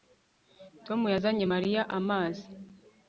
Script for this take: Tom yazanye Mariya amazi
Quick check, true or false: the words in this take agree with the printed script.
true